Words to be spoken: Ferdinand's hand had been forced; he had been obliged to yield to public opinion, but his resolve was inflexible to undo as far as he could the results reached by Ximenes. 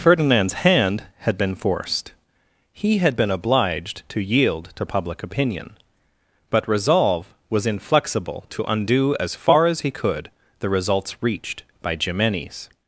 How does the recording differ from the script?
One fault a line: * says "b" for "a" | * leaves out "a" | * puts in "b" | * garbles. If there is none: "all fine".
* leaves out "his"